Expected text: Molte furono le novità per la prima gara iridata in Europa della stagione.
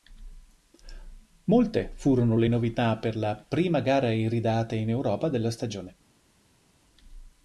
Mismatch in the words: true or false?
false